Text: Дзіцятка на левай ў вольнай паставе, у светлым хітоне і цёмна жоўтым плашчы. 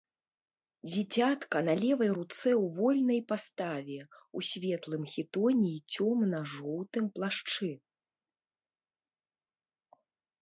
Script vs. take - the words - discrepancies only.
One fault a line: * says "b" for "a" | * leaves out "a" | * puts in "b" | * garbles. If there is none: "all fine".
* puts in "руцэ"